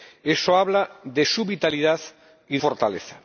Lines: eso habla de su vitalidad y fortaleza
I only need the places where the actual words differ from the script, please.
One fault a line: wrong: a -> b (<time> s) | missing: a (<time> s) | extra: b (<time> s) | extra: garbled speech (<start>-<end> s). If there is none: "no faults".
no faults